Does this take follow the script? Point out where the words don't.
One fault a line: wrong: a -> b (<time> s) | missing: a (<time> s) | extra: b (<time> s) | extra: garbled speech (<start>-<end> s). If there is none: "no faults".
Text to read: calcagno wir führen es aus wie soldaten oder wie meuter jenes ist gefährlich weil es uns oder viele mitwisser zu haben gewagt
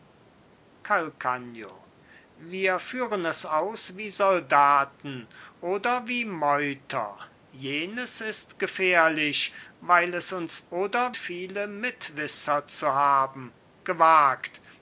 no faults